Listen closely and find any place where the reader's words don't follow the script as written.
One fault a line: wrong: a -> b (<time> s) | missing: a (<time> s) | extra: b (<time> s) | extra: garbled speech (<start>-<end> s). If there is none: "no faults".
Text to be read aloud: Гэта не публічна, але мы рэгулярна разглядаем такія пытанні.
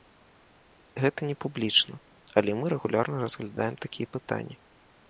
no faults